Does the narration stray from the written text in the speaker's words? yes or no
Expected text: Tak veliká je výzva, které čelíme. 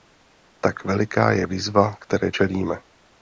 no